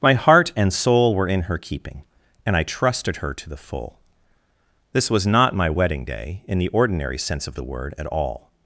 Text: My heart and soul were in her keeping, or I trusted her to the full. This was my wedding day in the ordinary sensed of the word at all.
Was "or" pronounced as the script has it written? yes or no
no